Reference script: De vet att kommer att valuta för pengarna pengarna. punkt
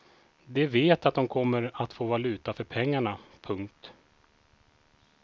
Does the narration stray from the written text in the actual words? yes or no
yes